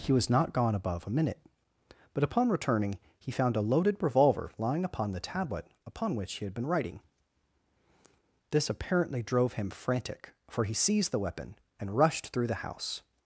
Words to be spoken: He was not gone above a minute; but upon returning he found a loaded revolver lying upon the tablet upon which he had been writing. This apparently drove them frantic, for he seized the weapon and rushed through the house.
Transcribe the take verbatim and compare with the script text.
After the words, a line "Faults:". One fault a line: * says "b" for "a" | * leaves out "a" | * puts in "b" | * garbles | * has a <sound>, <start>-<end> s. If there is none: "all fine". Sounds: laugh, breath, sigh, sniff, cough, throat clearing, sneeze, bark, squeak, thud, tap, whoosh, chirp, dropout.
He was not gone above a minute; but upon returning he found a loaded revolver lying upon the tablet upon which he had been writing. This apparently drove him frantic, for he seized the weapon and rushed through the house.
Faults:
* says "him" for "them"